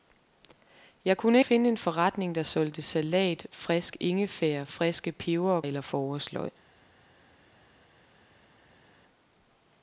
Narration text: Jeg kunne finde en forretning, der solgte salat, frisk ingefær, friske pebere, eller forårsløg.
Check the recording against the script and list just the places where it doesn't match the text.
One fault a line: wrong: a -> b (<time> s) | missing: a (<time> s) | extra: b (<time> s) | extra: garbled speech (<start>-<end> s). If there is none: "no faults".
no faults